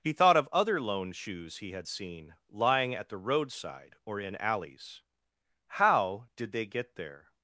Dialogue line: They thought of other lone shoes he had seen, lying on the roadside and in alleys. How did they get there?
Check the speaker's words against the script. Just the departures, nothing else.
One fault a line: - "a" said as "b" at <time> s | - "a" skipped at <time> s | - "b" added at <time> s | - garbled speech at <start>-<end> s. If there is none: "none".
- "They" said as "He" at 0.0 s
- "on" said as "at" at 3.0 s
- "and" said as "or" at 4.1 s